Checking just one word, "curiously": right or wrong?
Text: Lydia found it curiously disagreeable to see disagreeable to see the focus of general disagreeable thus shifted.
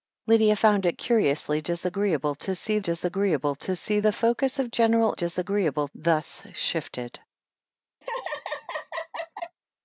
right